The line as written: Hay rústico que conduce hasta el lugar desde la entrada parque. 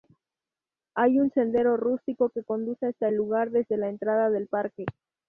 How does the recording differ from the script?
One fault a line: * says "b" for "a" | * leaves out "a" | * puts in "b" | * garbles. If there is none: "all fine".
* puts in "un sendero"
* puts in "del"